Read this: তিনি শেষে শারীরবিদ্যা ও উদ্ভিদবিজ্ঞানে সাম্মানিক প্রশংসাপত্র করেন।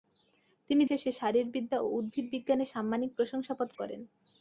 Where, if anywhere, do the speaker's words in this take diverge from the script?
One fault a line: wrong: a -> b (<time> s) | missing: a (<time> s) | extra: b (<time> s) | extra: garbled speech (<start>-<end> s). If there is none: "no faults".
no faults